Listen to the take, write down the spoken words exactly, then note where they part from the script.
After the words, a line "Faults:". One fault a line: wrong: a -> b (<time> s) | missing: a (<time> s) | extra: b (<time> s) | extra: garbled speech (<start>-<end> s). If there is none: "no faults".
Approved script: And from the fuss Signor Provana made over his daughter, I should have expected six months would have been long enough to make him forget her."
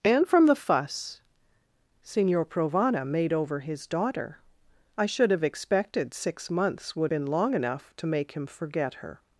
And from the fuss Signor Provana made over his daughter, I should have expected six months would been long enough to make him forget her."
Faults:
missing: have (7.1 s)